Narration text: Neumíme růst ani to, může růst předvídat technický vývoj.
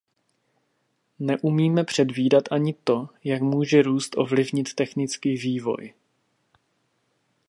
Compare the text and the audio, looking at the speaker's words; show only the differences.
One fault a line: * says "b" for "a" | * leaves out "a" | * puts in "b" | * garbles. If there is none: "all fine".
* says "předvídat" for "růst"
* puts in "jak"
* says "ovlivnit" for "předvídat"